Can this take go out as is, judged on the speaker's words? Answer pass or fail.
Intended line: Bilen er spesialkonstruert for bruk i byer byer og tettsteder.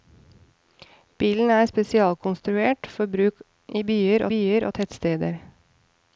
pass